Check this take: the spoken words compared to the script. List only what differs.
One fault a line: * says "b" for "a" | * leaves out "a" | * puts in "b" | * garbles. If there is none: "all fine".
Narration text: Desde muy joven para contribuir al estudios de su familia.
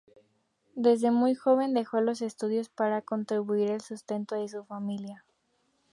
* puts in "dejó los estudios"
* says "sustento" for "estudios"